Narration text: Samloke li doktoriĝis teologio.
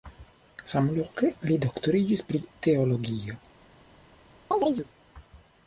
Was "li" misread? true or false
false